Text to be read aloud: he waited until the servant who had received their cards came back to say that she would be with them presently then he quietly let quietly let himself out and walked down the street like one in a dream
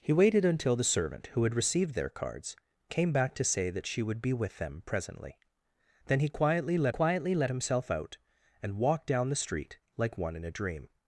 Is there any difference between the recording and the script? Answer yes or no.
no